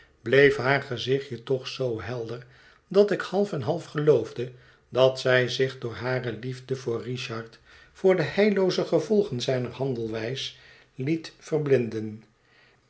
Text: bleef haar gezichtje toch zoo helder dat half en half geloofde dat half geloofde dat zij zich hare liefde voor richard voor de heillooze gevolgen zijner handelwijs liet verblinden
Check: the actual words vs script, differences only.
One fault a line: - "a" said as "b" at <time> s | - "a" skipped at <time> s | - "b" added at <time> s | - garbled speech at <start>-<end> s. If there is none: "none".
- "ik" added at 3.1 s
- "half geloofde dat" skipped at 5.2 s
- "door" added at 5.8 s